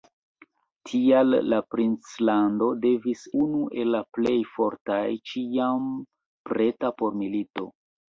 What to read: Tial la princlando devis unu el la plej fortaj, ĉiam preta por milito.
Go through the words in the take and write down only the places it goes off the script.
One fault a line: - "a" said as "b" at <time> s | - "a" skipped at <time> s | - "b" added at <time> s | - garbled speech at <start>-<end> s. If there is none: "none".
none